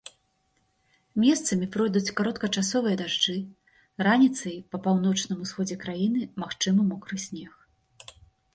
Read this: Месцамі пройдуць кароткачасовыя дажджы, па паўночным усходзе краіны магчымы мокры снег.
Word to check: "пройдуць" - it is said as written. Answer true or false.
true